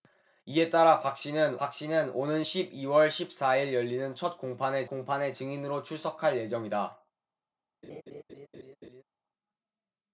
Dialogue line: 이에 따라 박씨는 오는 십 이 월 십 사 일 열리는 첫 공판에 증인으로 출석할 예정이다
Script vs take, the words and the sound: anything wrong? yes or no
yes